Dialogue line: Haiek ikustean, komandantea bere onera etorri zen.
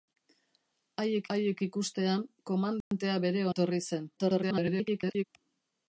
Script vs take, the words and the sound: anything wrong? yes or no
yes